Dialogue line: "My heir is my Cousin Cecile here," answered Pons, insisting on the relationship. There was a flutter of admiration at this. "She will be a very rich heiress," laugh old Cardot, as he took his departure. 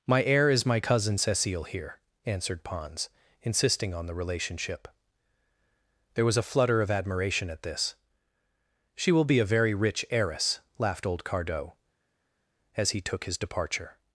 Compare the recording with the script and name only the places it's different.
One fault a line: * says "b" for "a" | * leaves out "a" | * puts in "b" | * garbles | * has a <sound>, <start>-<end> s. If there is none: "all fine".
* says "laughed" for "laugh"